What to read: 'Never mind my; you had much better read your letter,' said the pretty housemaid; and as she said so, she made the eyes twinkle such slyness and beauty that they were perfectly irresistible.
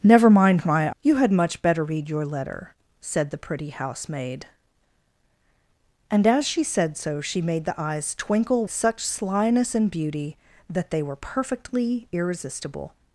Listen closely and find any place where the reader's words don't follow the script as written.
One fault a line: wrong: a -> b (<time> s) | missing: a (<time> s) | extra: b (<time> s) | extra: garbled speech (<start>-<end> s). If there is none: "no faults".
no faults